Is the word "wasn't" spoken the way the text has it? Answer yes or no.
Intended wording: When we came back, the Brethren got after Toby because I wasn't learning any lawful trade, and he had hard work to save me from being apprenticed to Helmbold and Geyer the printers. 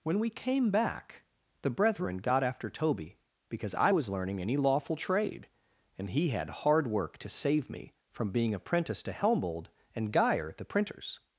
no